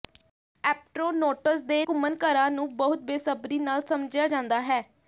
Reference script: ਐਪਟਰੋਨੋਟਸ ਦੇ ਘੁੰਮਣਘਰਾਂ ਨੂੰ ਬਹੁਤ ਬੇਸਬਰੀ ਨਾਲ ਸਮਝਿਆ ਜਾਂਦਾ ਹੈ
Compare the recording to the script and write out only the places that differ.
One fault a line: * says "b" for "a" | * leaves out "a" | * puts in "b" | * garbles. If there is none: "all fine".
all fine